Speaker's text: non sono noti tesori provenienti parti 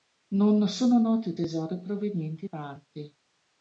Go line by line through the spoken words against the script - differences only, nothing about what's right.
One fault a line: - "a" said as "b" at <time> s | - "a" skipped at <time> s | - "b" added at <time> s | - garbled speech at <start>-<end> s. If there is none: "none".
none